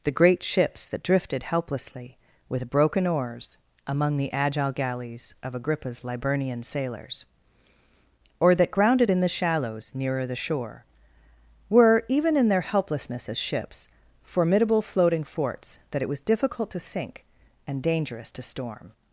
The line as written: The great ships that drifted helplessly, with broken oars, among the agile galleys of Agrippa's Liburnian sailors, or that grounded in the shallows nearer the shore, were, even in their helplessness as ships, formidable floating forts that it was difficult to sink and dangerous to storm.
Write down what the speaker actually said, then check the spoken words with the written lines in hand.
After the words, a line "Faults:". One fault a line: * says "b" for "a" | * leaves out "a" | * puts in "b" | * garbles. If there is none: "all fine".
The great ships that drifted helplessly, with broken oars, among the agile galleys of Agrippa's Liburnian sailors, or that grounded in the shallows nearer the shore, were, even in their helplessness as ships, formidable floating forts that it was difficult to sink and dangerous to storm.
Faults:
all fine